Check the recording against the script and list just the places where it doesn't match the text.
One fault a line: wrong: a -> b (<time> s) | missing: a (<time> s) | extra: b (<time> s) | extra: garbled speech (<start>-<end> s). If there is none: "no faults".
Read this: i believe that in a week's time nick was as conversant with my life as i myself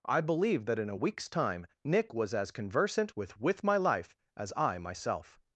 extra: with (3.4 s)